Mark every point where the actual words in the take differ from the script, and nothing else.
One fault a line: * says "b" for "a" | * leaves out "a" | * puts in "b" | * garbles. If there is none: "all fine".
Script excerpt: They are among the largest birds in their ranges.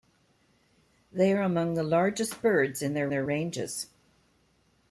* puts in "their"